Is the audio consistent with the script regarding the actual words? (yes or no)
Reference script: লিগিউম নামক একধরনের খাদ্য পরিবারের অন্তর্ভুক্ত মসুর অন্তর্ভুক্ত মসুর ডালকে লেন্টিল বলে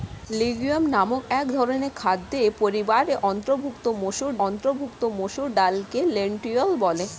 yes